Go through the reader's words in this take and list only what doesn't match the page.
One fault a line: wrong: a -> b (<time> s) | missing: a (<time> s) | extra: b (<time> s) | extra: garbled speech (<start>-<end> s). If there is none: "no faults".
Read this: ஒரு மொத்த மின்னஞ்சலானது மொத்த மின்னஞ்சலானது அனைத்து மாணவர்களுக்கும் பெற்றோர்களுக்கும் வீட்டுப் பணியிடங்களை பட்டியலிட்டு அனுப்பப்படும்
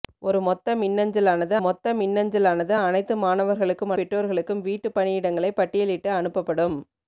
no faults